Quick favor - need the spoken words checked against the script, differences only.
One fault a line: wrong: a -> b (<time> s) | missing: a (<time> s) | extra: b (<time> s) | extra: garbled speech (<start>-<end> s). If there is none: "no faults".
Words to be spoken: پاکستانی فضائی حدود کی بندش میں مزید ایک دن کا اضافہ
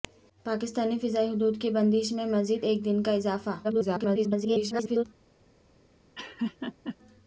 extra: garbled speech (3.6-5.0 s)